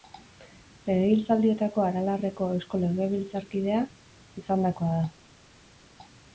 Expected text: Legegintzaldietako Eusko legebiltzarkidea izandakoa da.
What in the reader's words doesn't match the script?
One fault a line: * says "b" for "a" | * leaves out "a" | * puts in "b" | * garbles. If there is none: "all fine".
* puts in "Aralarreko"